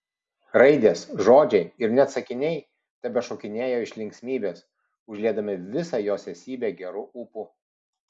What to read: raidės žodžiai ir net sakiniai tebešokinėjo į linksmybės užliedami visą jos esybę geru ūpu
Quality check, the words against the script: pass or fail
fail